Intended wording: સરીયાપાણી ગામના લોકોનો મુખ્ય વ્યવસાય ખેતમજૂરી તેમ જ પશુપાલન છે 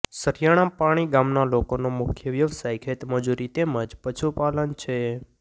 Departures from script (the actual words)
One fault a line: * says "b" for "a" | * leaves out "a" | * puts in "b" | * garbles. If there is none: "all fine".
all fine